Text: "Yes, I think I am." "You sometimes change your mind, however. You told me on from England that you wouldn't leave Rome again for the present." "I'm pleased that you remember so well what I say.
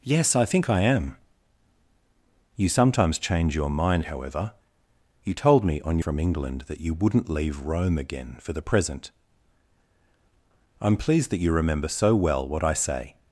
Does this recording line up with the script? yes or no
yes